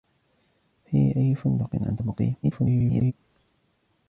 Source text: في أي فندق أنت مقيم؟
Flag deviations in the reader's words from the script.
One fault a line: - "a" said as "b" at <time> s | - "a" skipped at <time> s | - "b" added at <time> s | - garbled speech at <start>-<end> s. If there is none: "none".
- garbled speech at 2.4-3.1 s